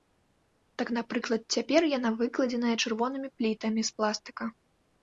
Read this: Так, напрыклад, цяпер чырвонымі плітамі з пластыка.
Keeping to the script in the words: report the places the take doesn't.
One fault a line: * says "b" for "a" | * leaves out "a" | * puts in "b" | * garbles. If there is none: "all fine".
* puts in "яна выкладзеная"